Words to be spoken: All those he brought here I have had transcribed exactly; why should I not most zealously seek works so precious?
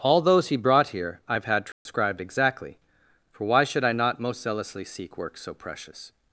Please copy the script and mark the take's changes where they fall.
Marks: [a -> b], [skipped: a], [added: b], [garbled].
All those he brought here I have had transcribed exactly; [added: for] why should I not most zealously seek works so precious?